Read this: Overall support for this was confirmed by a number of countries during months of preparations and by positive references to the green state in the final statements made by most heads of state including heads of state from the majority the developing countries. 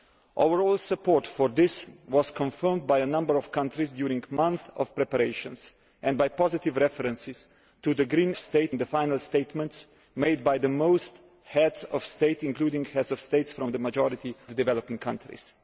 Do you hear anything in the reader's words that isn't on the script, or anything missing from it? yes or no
no